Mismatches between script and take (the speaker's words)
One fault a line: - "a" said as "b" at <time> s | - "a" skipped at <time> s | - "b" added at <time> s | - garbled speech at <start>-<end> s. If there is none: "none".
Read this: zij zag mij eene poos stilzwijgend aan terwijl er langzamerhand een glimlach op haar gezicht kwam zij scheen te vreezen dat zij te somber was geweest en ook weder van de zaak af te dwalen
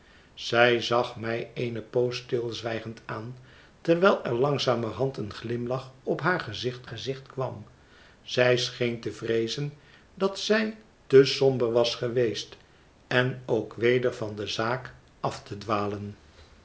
- "gezicht" added at 6.8 s